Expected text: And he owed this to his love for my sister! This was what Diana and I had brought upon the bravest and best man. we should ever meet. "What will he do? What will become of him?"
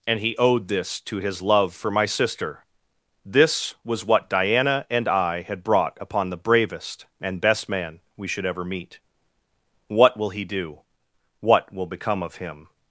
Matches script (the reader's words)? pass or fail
pass